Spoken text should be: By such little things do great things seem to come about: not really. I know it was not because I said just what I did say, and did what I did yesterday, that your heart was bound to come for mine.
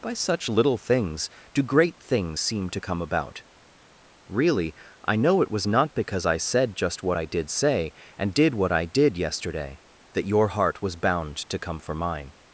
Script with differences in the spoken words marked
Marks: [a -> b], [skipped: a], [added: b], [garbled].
By such little things do great things seem to come about: [skipped: not] really. I know it was not because I said just what I did say, and did what I did yesterday, that your heart was bound to come for mine.